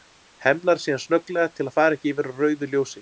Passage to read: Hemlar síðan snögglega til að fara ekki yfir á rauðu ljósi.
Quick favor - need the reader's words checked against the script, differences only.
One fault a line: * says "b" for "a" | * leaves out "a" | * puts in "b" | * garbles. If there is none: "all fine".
all fine